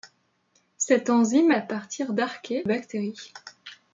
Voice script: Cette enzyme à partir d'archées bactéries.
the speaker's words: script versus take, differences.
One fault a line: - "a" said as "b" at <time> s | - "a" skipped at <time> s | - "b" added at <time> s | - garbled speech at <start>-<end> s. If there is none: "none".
none